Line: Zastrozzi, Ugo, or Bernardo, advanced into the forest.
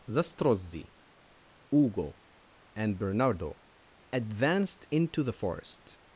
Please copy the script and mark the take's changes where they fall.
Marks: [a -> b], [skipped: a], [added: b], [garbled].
Zastrozzi, Ugo, [or -> and] Bernardo, advanced into the forest.